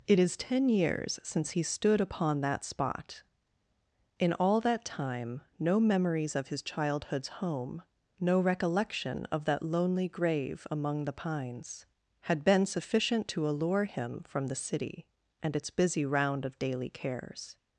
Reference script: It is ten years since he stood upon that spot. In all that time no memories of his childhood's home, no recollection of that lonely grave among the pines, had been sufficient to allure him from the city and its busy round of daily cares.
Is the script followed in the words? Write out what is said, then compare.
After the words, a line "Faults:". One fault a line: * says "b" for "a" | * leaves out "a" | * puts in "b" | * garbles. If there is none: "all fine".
It is ten years since he stood upon that spot. In all that time no memories of his childhood's home, no recollection of that lonely grave among the pines, had been sufficient to allure him from the city and its busy round of daily cares.
Faults:
all fine